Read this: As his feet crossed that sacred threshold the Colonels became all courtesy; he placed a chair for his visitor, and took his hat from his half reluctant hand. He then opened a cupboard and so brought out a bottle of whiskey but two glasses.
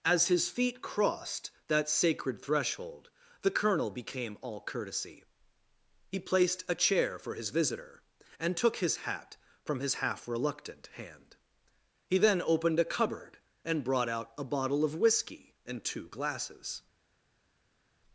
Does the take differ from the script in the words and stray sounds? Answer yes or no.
yes